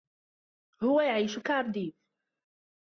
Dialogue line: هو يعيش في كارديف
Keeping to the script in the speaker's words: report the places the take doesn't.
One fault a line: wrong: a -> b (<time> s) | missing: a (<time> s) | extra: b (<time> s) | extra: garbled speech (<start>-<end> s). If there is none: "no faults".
missing: في (1.4 s)